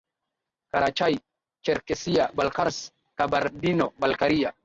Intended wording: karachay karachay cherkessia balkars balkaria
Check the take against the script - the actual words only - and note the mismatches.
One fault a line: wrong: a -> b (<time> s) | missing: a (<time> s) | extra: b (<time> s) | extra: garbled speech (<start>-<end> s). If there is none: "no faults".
missing: karachay (1.2 s)
extra: kabardino (3.2 s)